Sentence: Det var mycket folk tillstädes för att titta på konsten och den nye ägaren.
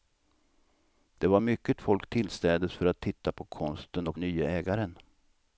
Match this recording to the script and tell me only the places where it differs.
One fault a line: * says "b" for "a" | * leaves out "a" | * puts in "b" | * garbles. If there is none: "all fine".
* leaves out "den"